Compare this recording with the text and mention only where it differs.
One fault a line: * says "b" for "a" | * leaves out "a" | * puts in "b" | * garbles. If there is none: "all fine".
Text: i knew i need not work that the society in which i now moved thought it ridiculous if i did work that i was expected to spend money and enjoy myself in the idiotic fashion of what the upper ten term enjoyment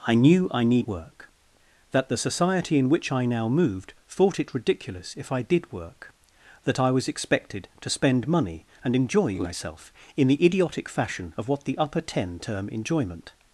* leaves out "not"